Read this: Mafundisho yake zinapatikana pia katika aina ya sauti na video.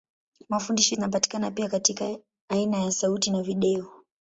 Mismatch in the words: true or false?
true